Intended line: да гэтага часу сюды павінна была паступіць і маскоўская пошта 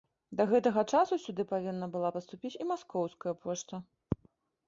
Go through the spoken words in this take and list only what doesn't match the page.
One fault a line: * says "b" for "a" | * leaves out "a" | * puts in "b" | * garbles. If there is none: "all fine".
all fine